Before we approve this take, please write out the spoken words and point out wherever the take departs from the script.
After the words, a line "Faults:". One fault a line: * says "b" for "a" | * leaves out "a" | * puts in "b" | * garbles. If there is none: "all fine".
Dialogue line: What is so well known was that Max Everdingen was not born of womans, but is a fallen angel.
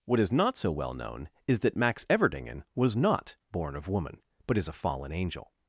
What is not so well known is that Max Everdingen was not born of woman, but is a fallen angel.
Faults:
* puts in "not"
* says "is" for "was"
* says "woman" for "womans"